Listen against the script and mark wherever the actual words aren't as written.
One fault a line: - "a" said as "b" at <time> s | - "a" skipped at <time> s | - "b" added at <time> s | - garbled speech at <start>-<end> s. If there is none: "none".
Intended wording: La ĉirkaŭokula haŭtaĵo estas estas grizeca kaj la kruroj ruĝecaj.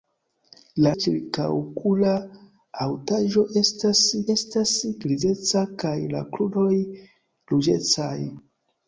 none